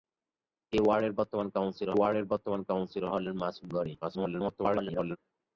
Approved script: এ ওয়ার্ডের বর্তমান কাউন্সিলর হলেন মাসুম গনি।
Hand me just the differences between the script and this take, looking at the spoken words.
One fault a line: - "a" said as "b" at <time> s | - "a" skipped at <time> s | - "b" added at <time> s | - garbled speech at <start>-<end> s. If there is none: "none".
- "ওয়ার্ডের বর্তমান কাউন্সিলর" added at 1.9 s
- garbled speech at 4.0-5.2 s